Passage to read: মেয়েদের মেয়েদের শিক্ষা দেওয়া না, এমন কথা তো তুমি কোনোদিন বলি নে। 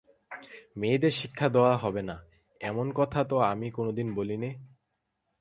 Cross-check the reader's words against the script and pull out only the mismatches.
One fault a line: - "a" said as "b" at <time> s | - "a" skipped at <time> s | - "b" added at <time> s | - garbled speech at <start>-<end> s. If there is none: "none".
- "মেয়েদের" skipped at 1.1 s
- "হবে" added at 1.8 s
- "তুমি" said as "আমি" at 3.5 s